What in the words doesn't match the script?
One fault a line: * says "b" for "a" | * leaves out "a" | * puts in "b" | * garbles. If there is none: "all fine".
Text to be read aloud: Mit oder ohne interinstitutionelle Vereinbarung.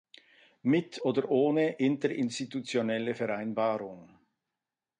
all fine